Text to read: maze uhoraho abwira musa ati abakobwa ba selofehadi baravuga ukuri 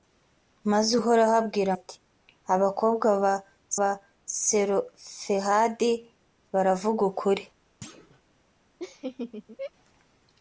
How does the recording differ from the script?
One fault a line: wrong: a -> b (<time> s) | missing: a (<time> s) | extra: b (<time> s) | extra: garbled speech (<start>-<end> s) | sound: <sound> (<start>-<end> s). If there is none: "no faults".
missing: musa (1.7 s)
extra: ba (3.8 s)
sound: thud (7.8-8.2 s)
sound: laugh (8.8-9.7 s)